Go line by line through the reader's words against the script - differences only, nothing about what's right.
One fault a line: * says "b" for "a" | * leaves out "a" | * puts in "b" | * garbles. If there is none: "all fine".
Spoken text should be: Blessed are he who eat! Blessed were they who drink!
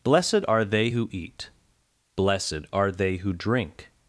* says "they" for "he"
* says "are" for "were"